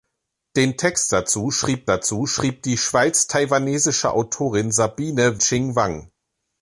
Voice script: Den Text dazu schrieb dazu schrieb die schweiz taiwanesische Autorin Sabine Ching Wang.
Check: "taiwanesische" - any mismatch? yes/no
no